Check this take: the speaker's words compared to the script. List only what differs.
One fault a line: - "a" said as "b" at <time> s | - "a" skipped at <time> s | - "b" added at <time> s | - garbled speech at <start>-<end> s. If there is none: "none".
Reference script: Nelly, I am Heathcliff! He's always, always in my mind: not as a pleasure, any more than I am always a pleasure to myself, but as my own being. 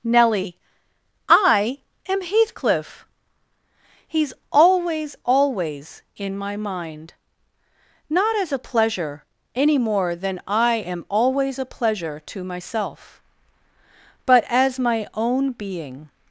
none